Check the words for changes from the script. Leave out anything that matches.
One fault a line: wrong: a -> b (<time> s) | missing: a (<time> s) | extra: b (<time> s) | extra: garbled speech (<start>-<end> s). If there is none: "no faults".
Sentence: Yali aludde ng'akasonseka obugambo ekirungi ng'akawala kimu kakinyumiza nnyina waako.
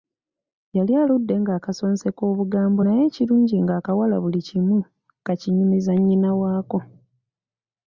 extra: naye (2.8 s)
extra: buli (4.2 s)